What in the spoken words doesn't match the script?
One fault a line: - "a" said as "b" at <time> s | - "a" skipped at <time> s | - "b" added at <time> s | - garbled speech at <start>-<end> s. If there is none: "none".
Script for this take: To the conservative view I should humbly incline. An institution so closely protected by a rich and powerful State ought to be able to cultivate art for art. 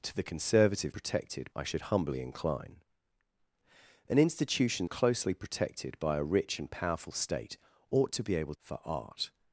- "view" said as "protected" at 0.9 s
- "so" skipped at 4.9 s
- "to cultivate art" skipped at 8.6 s